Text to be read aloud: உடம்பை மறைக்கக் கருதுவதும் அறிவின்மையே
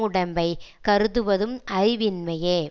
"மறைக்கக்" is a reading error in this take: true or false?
true